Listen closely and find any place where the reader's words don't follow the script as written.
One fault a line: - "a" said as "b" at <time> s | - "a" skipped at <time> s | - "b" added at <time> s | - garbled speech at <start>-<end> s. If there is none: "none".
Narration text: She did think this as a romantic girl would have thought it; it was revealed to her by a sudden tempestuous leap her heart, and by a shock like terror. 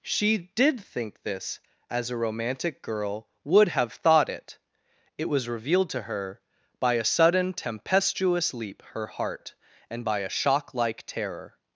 none